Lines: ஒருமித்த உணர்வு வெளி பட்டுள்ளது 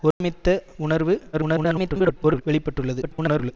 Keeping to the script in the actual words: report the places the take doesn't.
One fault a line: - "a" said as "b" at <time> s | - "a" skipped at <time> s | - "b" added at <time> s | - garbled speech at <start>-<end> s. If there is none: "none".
- garbled speech at 1.3-2.4 s
- garbled speech at 3.0-3.5 s